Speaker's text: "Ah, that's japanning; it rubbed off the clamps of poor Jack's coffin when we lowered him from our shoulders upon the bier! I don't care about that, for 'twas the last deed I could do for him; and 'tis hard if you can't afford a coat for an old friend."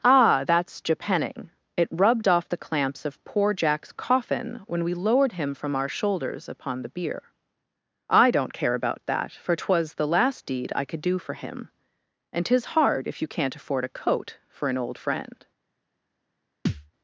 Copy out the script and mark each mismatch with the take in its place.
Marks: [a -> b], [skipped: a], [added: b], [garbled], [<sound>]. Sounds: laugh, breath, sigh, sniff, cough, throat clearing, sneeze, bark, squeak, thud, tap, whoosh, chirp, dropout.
"Ah, that's japanning; it rubbed off the clamps of poor Jack's coffin when we lowered him from our shoulders upon the bier! I don't care about that, for 'twas the last deed I could do for him; and 'tis hard if you can't afford a coat for an old friend." [thud]